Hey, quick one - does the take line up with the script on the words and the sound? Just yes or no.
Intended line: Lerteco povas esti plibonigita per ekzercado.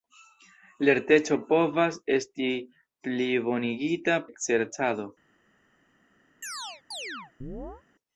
no